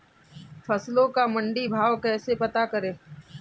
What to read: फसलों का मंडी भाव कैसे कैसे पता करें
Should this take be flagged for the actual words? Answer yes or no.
yes